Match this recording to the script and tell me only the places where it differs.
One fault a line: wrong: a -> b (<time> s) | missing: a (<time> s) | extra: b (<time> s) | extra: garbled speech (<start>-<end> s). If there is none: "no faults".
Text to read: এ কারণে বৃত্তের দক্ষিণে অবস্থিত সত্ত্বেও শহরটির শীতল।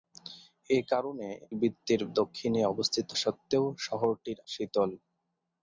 no faults